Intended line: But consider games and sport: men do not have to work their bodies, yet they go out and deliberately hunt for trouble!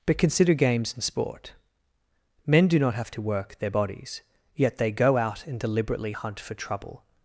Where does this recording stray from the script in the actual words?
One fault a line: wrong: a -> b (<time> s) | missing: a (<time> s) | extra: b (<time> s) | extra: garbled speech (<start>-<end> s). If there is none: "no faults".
no faults